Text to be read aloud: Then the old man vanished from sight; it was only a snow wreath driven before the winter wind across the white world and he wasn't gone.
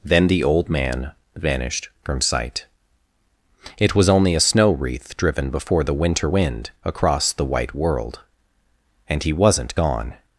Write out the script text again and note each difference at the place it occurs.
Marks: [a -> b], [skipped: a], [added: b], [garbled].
Then the old man vanished from sight; it was only a snow wreath driven before the winter wind across the white world and he wasn't gone.